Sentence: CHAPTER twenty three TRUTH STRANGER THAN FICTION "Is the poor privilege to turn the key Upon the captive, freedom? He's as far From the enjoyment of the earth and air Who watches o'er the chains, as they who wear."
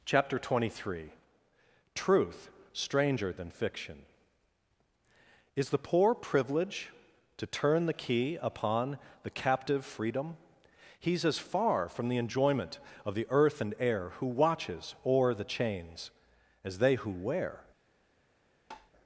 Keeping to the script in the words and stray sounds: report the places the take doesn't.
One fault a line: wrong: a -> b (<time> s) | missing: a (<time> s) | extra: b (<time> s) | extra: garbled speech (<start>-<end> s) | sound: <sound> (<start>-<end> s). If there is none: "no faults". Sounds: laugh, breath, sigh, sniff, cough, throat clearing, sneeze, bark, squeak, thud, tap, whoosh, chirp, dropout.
sound: tap (18.7-18.9 s)